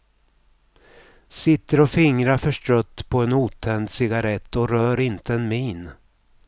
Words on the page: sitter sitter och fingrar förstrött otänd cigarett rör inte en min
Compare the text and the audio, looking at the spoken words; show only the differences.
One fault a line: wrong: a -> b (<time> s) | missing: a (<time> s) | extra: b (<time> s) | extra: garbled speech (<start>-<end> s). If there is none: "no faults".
missing: sitter (1.8 s)
extra: på en (3.1 s)
extra: och (4.5 s)